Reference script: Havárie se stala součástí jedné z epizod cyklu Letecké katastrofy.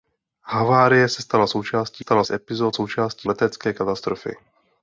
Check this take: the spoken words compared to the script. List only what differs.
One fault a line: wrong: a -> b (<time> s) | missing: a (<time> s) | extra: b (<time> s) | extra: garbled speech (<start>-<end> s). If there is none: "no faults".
wrong: jedné -> stala (2.0 s)
wrong: cyklu -> součástí (2.7 s)